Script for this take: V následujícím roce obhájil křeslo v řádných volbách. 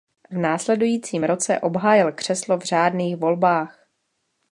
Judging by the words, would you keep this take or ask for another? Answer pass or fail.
pass